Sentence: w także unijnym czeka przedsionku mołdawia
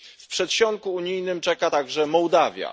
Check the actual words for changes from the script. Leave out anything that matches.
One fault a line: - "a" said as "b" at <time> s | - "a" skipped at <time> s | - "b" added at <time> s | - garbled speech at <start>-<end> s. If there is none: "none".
- "także" said as "przedsionku" at 0.3 s
- "przedsionku" said as "także" at 1.7 s